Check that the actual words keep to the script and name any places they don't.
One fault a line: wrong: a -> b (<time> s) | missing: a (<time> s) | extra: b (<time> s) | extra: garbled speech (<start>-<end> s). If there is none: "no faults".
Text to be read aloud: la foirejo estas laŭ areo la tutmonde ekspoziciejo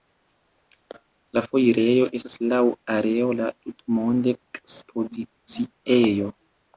no faults